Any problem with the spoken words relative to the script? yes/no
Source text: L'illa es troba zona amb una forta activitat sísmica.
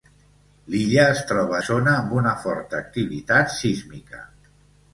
no